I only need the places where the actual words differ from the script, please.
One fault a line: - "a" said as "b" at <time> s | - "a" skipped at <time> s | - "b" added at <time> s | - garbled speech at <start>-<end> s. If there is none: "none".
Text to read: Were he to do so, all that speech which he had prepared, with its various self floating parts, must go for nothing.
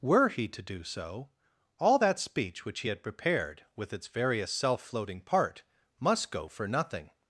- "parts" said as "part" at 5.2 s